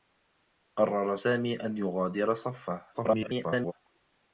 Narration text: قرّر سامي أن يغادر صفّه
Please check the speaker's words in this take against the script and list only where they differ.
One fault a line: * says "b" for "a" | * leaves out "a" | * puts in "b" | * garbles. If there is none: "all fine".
* garbles